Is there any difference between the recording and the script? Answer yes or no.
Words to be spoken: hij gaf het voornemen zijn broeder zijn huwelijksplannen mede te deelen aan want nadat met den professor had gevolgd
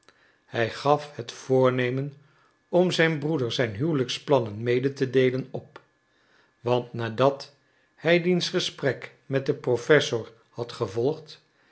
yes